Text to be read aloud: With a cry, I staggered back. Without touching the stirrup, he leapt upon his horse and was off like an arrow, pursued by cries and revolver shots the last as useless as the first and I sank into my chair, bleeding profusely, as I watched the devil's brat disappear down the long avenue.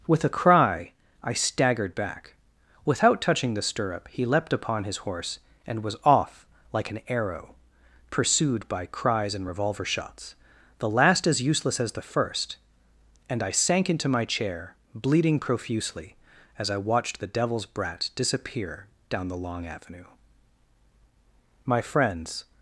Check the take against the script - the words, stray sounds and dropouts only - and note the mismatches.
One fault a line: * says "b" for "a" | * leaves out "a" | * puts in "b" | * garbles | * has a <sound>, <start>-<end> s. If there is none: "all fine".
* puts in "My friends"